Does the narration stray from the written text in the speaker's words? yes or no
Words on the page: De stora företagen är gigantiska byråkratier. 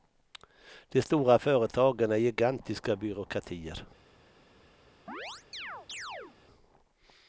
no